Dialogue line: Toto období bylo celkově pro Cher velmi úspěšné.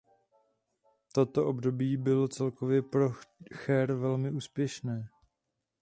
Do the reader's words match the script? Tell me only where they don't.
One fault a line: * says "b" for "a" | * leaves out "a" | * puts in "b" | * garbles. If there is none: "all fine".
all fine